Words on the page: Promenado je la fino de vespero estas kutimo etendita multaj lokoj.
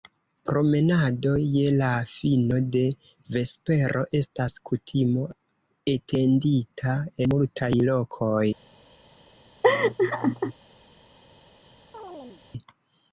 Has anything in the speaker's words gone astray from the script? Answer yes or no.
no